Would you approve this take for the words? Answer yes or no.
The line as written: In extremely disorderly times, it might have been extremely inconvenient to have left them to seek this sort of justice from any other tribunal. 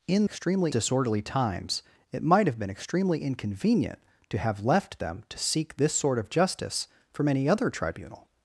yes